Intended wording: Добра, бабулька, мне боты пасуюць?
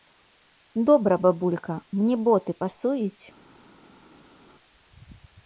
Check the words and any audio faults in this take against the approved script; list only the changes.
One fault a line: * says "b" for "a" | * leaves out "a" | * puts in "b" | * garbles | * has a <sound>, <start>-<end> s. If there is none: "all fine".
all fine